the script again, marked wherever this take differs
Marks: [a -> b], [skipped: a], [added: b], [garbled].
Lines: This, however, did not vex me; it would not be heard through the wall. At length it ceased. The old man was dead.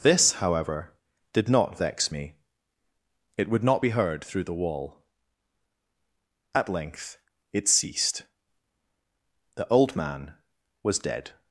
This, however, did not vex me; it would not be heard through the wall. At length it ceased. The old man was dead.